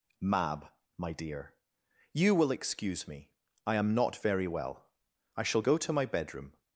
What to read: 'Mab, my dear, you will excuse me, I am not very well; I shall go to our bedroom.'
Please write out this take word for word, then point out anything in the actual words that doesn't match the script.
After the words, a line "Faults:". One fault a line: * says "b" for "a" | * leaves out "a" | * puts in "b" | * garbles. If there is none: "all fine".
'Mab, my dear, you will excuse me, I am not very well; I shall go to my bedroom.'
Faults:
* says "my" for "our"